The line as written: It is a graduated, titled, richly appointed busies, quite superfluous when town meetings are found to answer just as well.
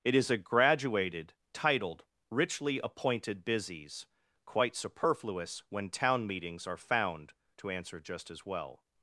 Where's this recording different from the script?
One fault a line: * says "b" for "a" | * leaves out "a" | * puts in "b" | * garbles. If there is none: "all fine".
all fine